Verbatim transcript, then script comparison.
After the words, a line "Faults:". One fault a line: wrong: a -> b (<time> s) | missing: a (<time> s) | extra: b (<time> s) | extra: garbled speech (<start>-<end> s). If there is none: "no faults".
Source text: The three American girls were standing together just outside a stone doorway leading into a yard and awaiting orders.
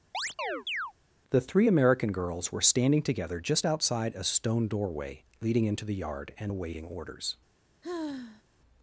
The three American girls were standing together just outside a stone doorway leading into the yard and awaiting orders.
Faults:
wrong: a -> the (5.8 s)